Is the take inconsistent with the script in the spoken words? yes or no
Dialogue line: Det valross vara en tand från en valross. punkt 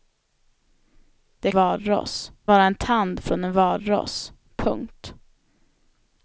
no